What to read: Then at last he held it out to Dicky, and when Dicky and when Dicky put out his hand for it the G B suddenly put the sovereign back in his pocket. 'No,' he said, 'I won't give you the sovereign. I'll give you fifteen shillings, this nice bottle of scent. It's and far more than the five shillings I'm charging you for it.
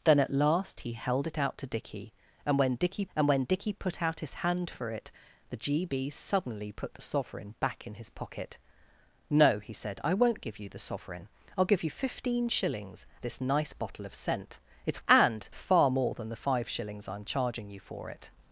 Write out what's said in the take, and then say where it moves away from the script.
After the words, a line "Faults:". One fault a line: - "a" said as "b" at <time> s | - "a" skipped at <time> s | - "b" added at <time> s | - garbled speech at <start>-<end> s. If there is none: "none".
Then at last he held it out to Dicky, and when Dicky and when Dicky put out his hand for it the G B suddenly put the sovereign back in his pocket. 'No,' he said, 'I won't give you the sovereign. I'll give you fifteen shillings, this nice bottle of scent. It's and far more than the five shillings I'm charging you for it.
Faults:
none